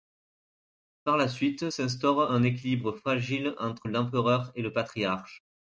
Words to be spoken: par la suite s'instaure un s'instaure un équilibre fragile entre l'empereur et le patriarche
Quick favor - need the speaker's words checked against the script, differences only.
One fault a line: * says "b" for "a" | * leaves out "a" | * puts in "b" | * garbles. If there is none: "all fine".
* leaves out "s'instaure un"